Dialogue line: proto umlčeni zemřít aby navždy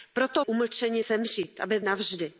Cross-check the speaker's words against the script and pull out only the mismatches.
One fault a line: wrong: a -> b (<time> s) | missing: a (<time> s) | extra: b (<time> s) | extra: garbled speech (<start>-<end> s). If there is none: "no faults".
no faults